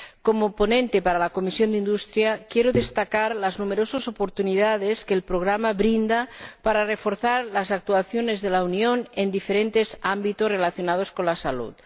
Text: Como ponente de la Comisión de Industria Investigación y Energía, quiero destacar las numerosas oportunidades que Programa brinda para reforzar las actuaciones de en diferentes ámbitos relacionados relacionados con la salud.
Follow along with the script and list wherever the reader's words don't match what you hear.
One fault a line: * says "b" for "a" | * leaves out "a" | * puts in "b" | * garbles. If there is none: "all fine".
* puts in "el"
* puts in "la Unión"
* leaves out "relacionados"